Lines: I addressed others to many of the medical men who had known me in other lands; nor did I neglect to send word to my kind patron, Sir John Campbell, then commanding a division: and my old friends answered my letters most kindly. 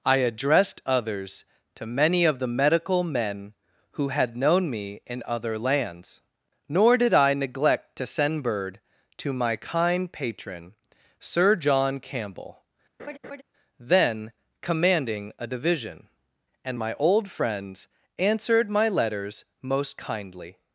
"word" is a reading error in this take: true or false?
true